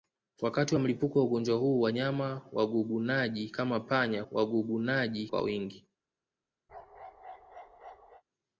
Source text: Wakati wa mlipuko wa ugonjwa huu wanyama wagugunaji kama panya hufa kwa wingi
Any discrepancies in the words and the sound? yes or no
yes